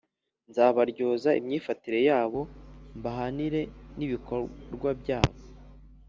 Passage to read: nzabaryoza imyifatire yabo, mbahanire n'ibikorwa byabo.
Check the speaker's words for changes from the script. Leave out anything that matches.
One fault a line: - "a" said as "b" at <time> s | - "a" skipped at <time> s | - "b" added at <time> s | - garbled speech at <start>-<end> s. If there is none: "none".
none